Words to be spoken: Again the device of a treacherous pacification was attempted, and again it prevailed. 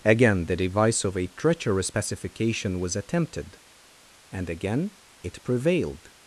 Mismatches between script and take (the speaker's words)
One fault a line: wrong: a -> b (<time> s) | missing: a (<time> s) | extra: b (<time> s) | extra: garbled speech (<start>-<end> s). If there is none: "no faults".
no faults